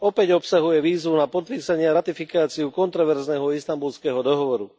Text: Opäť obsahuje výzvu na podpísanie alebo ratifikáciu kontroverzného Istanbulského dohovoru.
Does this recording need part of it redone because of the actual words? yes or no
yes